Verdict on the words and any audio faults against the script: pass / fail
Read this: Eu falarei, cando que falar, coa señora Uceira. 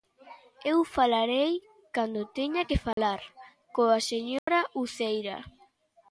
fail